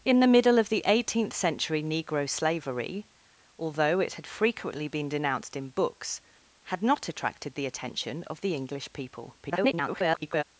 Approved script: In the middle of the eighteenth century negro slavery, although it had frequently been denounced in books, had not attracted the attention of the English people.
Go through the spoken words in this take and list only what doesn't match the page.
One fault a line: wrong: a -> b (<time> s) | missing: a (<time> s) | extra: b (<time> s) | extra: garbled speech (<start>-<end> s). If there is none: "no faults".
extra: garbled speech (9.4-10.4 s)